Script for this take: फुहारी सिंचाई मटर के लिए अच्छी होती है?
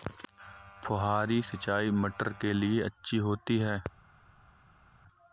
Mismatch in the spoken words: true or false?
false